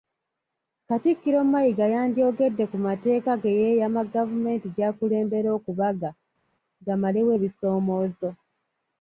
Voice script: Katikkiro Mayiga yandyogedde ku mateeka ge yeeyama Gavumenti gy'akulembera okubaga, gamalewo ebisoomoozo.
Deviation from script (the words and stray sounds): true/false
false